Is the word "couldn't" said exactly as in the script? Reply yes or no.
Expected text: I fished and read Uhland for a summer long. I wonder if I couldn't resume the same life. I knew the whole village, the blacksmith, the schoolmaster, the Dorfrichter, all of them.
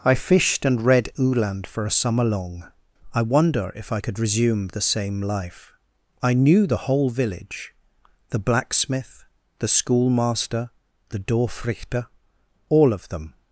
no